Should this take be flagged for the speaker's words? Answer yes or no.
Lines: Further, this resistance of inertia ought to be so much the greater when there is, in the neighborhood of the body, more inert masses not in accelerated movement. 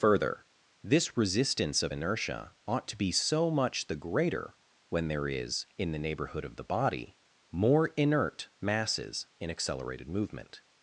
yes